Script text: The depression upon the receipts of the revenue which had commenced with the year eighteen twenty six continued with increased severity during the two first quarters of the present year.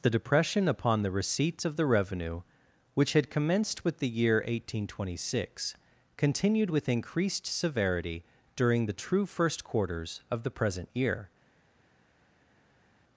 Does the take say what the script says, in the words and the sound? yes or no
no